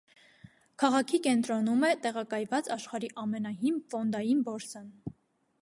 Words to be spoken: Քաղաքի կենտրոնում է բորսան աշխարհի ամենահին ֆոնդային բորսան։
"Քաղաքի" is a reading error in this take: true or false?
false